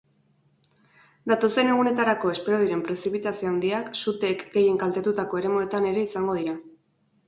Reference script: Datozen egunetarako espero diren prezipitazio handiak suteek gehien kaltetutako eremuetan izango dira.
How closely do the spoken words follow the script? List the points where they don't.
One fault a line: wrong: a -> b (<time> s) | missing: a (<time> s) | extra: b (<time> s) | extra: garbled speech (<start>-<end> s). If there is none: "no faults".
extra: ere (6.0 s)